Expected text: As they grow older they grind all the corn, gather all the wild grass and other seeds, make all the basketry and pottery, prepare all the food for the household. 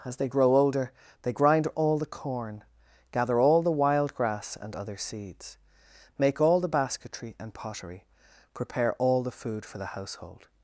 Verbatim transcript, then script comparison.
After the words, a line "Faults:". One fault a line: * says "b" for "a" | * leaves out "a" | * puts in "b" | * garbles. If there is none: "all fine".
As they grow older they grind all the corn, gather all the wild grass and other seeds, make all the basketry and pottery, prepare all the food for the household.
Faults:
all fine